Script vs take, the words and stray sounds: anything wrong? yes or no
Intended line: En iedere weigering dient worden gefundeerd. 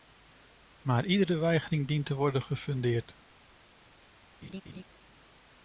yes